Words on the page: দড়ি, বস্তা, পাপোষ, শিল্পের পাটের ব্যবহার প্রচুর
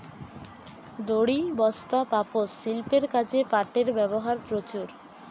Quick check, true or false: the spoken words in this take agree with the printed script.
false